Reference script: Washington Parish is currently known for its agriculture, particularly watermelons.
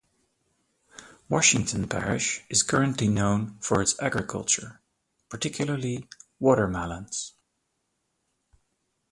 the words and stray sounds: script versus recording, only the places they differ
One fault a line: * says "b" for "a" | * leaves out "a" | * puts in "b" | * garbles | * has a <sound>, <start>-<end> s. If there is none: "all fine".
all fine